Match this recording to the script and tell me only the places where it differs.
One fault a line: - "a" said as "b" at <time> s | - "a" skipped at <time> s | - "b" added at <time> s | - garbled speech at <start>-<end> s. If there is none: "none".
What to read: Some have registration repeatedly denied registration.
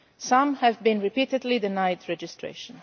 - "registration" said as "been" at 0.8 s